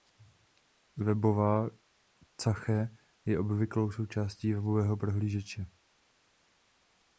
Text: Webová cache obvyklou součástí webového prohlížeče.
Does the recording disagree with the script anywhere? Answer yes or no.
yes